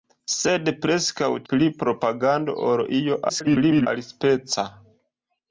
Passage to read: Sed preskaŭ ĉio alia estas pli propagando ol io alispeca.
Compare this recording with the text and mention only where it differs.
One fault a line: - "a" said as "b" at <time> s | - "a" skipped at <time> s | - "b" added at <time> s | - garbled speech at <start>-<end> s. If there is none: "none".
- "ĉio alia estas" skipped at 1.3 s
- garbled speech at 3.3-3.9 s